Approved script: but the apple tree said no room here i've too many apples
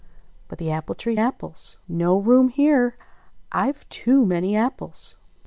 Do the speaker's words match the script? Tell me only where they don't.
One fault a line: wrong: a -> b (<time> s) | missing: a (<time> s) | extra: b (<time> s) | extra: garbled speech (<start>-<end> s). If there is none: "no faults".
wrong: said -> apples (1.2 s)